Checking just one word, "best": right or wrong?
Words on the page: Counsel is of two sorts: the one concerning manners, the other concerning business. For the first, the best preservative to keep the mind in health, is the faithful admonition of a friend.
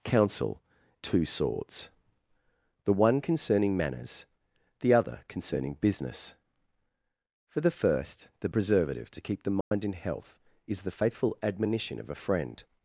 wrong